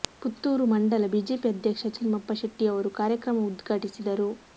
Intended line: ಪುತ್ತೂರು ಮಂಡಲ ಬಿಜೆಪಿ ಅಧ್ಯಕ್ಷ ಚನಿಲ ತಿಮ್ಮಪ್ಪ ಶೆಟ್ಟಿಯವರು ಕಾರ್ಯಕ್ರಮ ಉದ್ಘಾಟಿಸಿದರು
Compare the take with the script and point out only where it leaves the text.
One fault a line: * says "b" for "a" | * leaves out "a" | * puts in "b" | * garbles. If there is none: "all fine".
* leaves out "ಚನಿಲ"